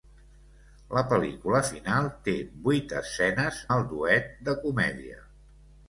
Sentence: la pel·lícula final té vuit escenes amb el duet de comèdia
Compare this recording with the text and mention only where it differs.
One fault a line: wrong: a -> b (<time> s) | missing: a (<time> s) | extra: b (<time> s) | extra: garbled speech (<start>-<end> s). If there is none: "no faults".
missing: amb (3.6 s)